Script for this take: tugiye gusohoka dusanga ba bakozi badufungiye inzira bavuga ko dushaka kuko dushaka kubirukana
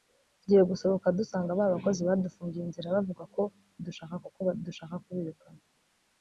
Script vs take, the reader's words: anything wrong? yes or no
no